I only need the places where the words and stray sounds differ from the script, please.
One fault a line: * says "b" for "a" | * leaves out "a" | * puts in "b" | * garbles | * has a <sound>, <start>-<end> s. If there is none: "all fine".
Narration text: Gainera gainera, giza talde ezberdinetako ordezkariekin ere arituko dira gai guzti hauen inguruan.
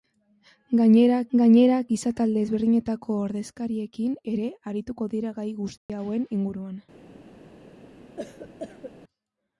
* has a dropout, 5.8-5.9 s
* has a cough, 8.2-8.9 s